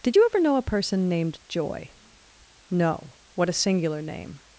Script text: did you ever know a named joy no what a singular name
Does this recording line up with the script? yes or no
no